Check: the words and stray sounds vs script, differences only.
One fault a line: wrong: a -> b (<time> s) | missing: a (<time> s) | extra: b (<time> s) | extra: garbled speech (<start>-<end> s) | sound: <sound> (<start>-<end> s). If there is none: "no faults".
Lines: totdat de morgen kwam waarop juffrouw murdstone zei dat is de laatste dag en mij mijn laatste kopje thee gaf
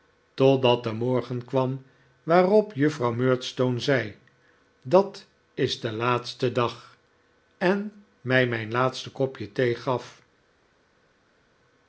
no faults